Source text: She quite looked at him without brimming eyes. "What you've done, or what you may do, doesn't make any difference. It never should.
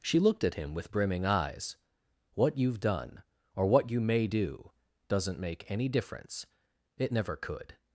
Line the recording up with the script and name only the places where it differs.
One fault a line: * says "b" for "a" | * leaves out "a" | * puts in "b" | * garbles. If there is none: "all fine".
* leaves out "quite"
* says "with" for "without"
* says "could" for "should"